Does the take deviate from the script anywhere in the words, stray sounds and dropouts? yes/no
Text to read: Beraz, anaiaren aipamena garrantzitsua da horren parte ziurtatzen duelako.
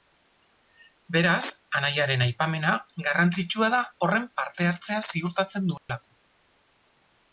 yes